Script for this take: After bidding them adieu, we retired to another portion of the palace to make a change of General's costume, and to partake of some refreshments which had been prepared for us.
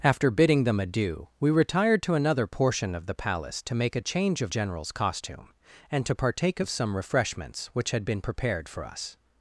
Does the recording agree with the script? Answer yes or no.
yes